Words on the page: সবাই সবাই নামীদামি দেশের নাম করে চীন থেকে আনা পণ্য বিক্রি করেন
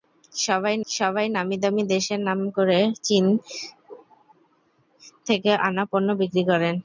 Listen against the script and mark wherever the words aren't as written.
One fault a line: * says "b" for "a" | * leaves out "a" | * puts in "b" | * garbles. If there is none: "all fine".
all fine